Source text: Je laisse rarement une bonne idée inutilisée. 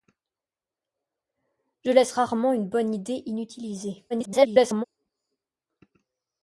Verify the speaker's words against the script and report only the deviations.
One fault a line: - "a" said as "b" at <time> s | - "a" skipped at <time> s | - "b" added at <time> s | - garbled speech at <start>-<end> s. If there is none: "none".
- garbled speech at 4.1-4.8 s